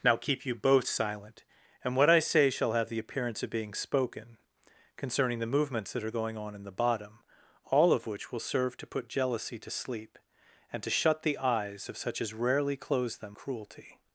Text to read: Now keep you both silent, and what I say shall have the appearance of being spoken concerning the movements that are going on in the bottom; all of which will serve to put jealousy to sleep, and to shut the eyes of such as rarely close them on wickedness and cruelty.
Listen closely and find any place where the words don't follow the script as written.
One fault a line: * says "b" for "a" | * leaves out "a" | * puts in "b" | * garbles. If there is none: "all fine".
* leaves out "on wickedness and"